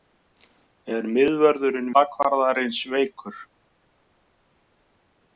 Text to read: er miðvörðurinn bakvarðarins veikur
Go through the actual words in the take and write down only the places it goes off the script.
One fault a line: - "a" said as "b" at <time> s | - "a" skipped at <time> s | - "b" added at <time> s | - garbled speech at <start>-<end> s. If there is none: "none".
none